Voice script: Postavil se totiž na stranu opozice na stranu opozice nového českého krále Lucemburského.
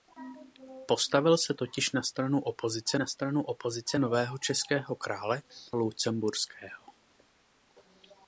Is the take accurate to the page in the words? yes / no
yes